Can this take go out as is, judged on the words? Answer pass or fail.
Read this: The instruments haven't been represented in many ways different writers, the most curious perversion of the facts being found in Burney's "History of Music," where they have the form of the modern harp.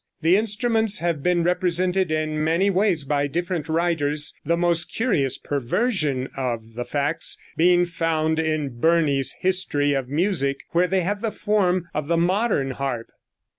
fail